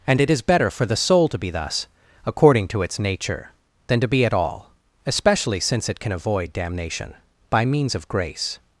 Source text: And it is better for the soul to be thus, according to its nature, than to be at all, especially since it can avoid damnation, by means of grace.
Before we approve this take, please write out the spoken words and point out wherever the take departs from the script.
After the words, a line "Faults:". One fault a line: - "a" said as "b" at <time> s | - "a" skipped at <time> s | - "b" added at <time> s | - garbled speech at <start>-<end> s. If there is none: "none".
And it is better for the soul to be thus, according to its nature, than to be at all, especially since it can avoid damnation, by means of grace.
Faults:
none